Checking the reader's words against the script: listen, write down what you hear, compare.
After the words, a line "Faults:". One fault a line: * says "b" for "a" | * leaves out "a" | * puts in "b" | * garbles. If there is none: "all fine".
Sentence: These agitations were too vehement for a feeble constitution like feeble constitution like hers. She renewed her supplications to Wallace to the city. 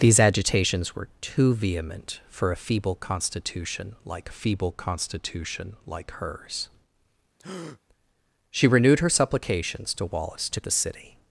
These agitations were too vehement for a feeble constitution like feeble constitution like hers. She renewed her supplications to Wallace to the city.
Faults:
all fine